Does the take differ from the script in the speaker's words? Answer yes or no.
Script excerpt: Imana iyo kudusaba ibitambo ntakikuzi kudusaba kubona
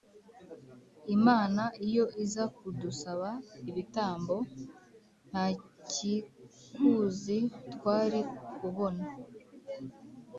yes